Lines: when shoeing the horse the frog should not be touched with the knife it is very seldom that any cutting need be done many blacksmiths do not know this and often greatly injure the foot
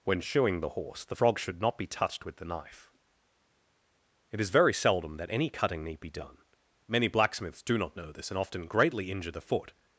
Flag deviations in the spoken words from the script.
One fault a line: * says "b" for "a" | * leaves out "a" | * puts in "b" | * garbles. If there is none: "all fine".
all fine